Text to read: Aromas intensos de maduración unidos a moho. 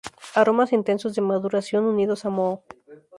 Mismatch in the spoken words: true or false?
false